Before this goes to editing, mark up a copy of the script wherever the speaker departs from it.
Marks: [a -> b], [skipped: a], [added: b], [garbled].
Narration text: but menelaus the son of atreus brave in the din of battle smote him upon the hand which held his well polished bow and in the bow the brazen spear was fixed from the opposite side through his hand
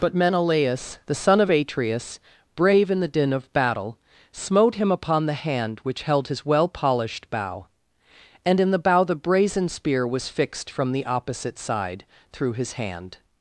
but menelaus the son of atreus brave in the din of battle smote him upon the hand which held his well polished bow and in the bow the brazen spear was fixed from the opposite side through his hand